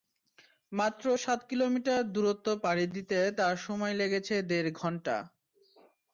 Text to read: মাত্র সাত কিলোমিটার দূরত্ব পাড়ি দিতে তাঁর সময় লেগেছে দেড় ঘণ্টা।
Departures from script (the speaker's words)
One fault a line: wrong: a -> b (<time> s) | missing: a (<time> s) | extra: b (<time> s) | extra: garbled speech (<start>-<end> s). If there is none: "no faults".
no faults